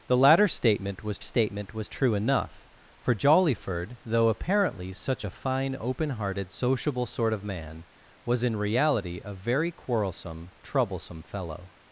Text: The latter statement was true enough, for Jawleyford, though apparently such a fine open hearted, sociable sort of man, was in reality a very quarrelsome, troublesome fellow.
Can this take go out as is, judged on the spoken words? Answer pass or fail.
fail